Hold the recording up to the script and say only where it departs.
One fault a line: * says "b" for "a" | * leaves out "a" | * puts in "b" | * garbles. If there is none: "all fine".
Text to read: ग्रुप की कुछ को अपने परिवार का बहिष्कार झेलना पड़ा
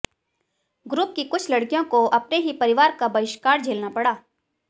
* puts in "लड़कियों"
* puts in "ही"